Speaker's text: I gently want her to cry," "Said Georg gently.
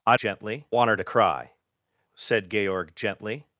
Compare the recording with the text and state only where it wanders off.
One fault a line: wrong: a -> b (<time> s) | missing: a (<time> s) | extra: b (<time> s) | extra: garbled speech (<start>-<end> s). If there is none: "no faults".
no faults